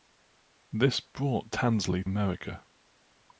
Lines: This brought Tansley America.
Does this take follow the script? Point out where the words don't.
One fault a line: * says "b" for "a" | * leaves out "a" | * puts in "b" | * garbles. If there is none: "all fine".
all fine